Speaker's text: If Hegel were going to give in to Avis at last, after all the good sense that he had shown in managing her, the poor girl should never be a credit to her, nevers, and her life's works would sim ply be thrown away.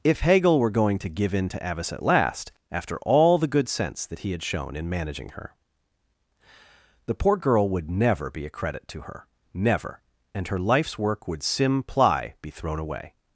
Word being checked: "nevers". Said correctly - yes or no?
no